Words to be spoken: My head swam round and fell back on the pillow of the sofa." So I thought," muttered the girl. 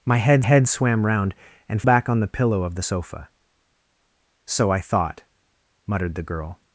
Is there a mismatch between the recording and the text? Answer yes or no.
yes